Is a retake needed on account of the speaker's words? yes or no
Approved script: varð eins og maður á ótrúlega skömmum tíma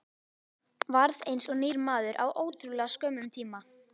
yes